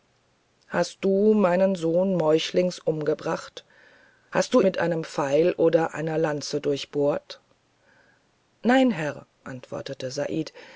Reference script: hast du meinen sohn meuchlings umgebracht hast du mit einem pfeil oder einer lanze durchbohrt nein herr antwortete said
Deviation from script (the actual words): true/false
false